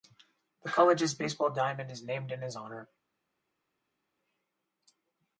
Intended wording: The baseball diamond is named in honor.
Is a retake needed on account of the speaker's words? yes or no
yes